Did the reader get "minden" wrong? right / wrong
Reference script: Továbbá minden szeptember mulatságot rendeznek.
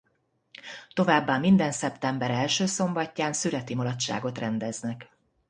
right